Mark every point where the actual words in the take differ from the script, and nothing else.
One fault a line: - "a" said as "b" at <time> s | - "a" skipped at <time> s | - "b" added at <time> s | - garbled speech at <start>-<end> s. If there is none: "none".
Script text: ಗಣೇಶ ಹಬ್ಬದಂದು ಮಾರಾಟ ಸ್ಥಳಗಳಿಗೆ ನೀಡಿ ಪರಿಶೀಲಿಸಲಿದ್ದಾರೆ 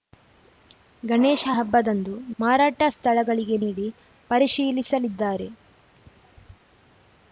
none